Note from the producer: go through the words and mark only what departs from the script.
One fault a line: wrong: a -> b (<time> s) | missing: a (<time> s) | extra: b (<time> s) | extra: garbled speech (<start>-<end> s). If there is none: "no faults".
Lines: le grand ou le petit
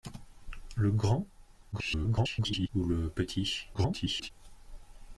extra: garbled speech (1.7-2.7 s)
extra: garbled speech (3.7-4.3 s)